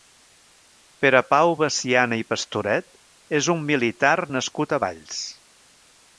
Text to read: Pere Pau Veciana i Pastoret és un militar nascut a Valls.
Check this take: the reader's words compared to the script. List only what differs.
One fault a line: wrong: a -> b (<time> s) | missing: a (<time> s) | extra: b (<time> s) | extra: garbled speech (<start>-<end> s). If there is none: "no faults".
no faults